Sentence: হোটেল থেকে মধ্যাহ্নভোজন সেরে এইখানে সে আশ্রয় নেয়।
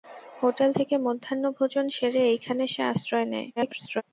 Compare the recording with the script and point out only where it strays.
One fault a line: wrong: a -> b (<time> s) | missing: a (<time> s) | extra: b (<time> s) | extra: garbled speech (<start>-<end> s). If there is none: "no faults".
extra: garbled speech (3.6-4.0 s)